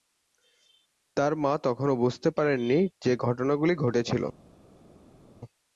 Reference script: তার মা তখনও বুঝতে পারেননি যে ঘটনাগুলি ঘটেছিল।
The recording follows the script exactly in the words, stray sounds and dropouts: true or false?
true